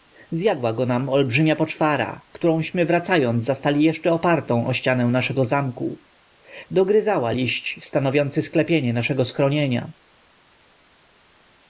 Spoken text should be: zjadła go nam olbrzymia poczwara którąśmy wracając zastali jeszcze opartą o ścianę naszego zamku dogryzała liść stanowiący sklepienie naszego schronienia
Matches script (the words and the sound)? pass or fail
pass